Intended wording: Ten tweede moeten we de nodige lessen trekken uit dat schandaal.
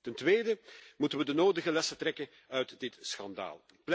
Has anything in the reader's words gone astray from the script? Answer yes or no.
yes